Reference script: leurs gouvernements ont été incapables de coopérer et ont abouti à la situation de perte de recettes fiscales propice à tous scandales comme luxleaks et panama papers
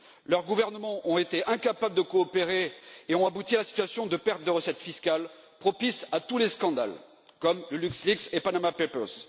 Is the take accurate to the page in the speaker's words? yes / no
no